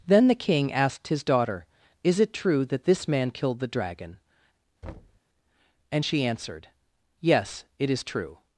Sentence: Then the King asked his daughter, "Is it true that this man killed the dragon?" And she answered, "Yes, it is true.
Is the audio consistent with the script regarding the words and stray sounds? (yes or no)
no